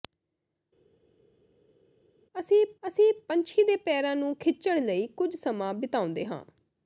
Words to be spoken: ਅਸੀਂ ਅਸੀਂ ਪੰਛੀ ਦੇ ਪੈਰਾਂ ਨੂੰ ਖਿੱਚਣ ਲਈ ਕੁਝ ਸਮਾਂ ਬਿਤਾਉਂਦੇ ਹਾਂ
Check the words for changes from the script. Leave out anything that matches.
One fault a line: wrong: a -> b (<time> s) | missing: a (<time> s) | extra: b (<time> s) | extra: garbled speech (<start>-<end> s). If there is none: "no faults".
no faults